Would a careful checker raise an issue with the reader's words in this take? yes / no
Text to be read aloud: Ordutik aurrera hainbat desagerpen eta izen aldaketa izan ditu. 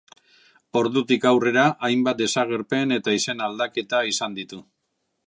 no